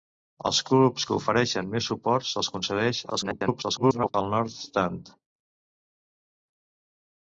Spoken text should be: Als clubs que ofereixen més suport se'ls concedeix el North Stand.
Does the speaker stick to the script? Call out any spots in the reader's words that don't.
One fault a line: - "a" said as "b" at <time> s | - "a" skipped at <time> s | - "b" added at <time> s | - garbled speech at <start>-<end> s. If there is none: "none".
- garbled speech at 3.1-4.1 s